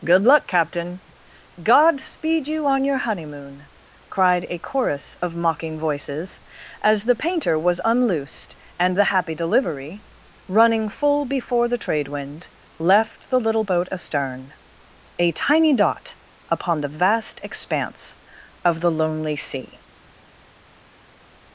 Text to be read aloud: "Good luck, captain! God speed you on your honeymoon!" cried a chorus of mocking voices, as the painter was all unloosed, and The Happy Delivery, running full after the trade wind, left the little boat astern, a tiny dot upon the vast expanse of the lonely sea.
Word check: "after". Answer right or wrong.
wrong